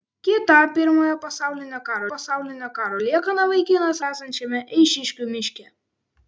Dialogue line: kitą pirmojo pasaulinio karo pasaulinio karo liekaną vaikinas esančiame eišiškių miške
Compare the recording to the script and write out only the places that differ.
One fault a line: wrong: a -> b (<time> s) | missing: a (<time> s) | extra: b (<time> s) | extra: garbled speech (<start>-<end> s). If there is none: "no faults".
no faults